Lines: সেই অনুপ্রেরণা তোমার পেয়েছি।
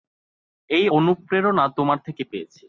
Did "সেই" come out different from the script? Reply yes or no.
yes